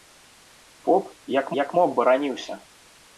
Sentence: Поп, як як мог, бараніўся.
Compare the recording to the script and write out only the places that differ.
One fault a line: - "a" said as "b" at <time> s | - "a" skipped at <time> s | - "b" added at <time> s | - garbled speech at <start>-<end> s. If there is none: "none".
none